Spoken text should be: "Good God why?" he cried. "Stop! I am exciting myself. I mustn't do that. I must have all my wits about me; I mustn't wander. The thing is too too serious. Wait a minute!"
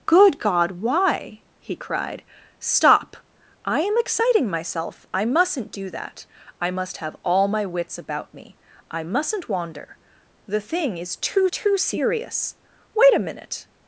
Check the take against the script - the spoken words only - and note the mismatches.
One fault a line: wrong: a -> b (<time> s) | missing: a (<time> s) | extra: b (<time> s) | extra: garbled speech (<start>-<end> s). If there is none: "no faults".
no faults